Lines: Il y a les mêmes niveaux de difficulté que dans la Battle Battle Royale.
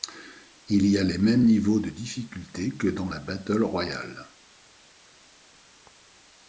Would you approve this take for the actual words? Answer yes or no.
no